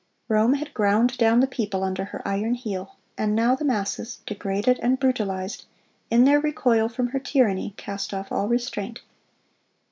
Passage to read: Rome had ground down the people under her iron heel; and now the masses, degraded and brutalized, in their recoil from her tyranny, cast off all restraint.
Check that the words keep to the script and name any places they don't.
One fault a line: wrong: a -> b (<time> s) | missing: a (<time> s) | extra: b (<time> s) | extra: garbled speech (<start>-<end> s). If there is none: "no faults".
no faults